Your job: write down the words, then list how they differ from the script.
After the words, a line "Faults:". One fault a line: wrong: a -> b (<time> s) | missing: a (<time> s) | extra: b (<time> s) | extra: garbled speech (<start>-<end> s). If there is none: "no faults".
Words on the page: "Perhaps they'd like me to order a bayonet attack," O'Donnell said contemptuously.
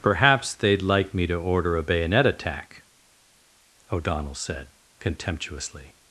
"Perhaps they'd like me to order a bayonet attack," O'Donnell said contemptuously.
Faults:
no faults